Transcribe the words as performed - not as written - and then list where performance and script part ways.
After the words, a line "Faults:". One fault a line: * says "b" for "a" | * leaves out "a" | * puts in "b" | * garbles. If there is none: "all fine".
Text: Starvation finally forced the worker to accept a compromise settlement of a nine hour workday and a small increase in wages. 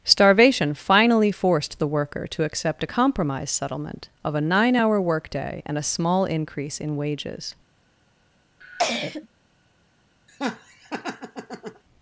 Starvation finally forced the worker to accept a compromise settlement of a nine hour workday and a small increase in wages.
Faults:
all fine